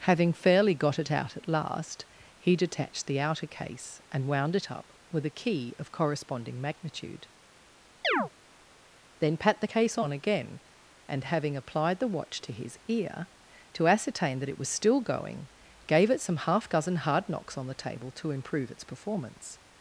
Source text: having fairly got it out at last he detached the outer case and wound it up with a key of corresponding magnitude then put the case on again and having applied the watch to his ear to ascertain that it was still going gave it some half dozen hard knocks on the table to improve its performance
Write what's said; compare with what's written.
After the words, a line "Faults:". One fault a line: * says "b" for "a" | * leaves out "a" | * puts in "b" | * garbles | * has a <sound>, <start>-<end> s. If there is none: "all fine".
having fairly got it out at last he detached the outer case and wound it up with a key of corresponding magnitude then pat the case on again and having applied the watch to his ear to ascertain that it was still going gave it some half dozen hard knocks on the table to improve its performance
Faults:
* has a chirp, 8.0-8.3 s
* says "pat" for "put"